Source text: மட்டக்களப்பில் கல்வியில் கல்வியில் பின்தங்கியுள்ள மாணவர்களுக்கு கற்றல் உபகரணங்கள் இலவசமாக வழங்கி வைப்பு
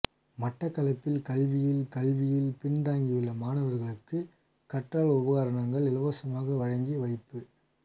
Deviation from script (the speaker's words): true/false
false